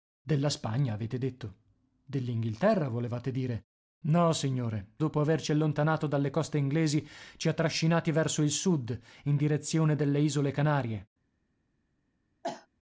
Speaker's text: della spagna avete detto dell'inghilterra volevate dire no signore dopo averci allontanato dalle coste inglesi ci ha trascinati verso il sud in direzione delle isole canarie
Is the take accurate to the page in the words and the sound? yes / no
no